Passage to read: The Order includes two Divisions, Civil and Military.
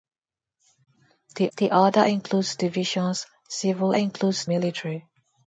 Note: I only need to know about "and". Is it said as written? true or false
false